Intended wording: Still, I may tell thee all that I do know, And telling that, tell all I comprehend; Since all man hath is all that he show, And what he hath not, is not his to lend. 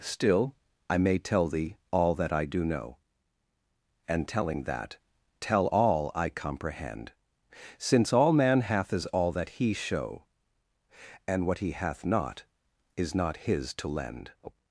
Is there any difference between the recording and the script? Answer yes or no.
no